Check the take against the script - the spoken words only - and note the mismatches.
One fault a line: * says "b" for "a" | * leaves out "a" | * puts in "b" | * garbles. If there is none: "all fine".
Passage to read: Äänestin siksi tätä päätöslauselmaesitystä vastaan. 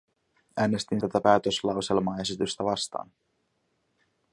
* leaves out "siksi"